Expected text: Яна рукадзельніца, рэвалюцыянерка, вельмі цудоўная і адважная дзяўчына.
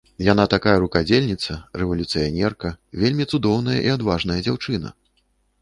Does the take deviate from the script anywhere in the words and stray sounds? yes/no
yes